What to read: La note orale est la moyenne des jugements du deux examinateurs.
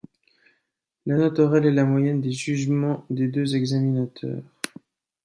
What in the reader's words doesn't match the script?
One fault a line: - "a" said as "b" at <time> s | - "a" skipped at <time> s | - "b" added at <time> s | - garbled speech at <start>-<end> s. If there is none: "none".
- "du" said as "des" at 3.1 s